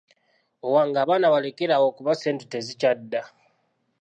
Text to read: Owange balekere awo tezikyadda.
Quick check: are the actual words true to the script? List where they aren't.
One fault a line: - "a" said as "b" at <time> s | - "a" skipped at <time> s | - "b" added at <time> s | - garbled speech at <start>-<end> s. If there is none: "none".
- "abaana" added at 1.0 s
- "kuba ssente" added at 2.0 s